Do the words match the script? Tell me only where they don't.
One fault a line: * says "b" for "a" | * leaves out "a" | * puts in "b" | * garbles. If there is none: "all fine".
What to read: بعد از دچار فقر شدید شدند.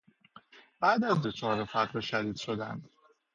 all fine